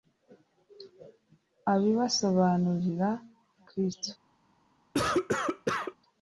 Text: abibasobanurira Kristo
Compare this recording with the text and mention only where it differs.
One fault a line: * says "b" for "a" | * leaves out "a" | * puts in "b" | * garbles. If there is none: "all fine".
all fine